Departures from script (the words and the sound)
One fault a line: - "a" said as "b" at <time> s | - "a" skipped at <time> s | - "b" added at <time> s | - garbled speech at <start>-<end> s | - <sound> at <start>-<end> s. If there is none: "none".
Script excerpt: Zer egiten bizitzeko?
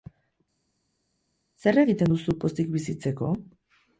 - "duzu pozik" added at 2.1 s